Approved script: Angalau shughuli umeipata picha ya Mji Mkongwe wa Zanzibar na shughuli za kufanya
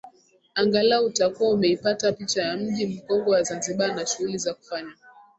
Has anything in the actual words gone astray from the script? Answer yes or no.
yes